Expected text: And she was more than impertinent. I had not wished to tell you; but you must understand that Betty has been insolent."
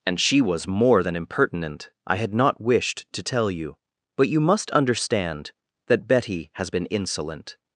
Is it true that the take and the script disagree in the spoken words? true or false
false